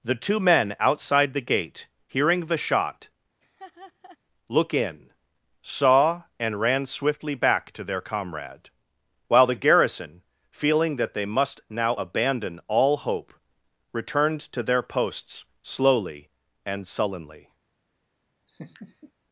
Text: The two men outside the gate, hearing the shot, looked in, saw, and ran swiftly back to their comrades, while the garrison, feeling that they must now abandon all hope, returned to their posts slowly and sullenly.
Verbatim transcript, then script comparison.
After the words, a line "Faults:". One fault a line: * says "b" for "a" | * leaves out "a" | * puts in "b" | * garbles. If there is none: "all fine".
The two men outside the gate, hearing the shot, look in, saw, and ran swiftly back to their comrade, while the garrison, feeling that they must now abandon all hope, returned to their posts slowly and sullenly.
Faults:
* says "look" for "looked"
* says "comrade" for "comrades"